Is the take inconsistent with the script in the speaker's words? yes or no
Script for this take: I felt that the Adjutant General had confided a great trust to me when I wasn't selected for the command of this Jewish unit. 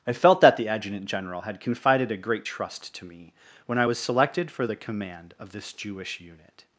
yes